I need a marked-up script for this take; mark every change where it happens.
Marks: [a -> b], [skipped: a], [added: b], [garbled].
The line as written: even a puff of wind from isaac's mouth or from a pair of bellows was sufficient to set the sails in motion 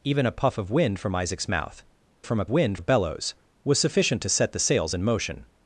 even a puff of wind from isaac's mouth [skipped: or] from a [pair -> wind] of bellows was sufficient to set the sails in motion